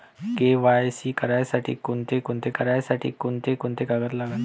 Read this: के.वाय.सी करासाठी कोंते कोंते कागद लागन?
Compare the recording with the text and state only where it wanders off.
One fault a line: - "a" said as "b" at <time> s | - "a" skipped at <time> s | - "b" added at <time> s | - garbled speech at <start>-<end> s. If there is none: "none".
- "करासाठी कोंते कोंते" added at 2.5 s